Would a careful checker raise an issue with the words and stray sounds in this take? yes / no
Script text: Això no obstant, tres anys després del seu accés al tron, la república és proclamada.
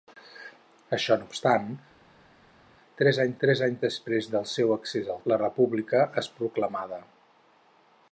yes